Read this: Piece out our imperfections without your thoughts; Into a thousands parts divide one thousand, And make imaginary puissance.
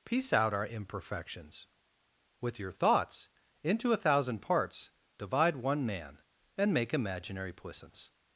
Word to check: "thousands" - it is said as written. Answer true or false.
false